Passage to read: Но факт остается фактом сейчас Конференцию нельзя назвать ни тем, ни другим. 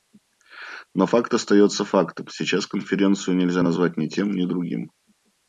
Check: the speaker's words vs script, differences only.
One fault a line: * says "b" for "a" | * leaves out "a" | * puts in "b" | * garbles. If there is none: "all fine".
all fine